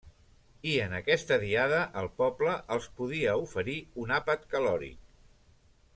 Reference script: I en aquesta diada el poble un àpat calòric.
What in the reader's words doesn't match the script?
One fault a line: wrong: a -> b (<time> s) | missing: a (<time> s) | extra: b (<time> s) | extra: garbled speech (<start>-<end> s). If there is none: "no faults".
extra: els podia oferir (2.8 s)